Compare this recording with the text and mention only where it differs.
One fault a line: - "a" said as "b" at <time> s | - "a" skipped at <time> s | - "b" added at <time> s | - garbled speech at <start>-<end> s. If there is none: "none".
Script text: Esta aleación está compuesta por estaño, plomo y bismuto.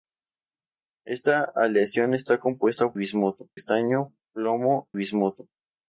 - "por" said as "bismuto" at 2.9 s
- "y" skipped at 4.9 s